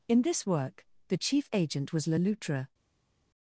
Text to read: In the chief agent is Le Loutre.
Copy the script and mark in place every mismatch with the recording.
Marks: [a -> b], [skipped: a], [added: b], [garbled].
In [added: this work] the chief agent [is -> was] Le Loutre.